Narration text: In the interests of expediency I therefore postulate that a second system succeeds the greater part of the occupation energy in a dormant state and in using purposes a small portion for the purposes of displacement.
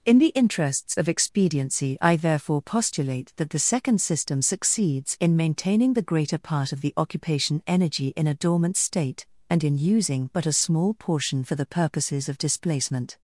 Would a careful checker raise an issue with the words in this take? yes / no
yes